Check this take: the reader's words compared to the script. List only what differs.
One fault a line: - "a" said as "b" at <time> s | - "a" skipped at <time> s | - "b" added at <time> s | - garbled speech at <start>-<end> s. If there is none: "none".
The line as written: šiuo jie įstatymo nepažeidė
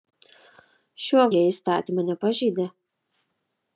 none